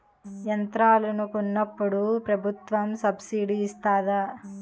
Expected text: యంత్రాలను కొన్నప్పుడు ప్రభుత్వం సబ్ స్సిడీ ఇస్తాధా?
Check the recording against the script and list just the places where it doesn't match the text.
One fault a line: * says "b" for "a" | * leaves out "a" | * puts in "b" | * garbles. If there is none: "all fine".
all fine